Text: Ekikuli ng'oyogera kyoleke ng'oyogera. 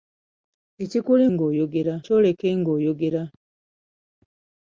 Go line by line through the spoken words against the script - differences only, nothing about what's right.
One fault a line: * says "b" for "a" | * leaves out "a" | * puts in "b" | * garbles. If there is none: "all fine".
all fine